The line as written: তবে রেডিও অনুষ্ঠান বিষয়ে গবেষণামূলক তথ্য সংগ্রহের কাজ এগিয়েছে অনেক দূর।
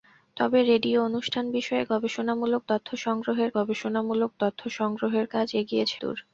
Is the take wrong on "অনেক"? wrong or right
wrong